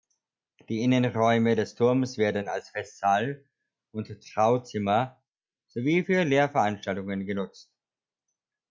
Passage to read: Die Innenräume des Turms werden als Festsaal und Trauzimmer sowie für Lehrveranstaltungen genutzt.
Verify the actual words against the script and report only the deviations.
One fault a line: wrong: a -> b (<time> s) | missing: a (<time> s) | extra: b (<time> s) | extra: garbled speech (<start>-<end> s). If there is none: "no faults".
no faults